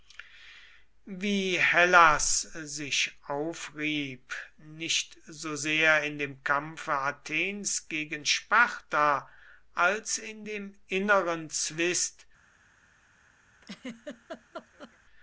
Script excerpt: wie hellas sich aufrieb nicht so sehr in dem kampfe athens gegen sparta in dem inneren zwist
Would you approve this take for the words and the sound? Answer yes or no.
no